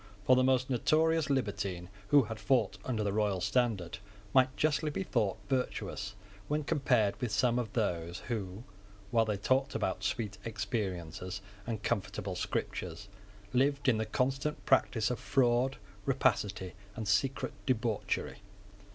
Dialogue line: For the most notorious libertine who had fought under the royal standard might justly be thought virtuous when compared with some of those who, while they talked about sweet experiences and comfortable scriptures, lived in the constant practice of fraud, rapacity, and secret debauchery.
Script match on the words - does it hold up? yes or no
yes